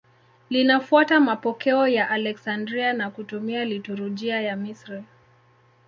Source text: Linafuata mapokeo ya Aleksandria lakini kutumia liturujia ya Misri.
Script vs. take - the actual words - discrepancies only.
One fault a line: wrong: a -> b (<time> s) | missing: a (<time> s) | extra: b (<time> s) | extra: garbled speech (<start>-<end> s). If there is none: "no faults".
wrong: lakini -> na (2.9 s)